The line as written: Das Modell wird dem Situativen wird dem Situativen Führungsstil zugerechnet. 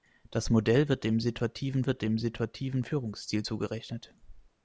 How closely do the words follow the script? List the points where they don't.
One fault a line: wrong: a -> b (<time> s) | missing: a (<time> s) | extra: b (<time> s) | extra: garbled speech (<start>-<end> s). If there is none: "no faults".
no faults